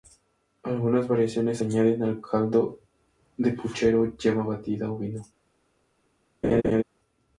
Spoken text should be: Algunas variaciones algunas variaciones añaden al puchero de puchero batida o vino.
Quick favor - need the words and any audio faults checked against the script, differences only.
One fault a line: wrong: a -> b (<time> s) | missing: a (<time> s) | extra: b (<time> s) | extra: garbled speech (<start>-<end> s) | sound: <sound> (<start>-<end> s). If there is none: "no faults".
missing: algunas variaciones (1.6 s)
wrong: puchero -> caldo (2.2 s)
extra: yema (4.2 s)
sound: laugh (6.4-6.8 s)